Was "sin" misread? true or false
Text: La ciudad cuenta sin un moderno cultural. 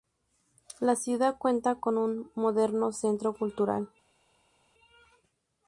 true